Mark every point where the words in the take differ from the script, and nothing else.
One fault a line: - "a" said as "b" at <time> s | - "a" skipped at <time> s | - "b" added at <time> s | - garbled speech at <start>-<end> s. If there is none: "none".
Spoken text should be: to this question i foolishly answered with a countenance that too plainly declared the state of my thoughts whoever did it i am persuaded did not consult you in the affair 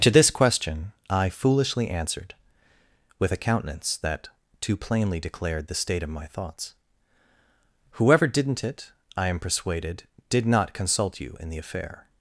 - "did" said as "didn't" at 8.3 s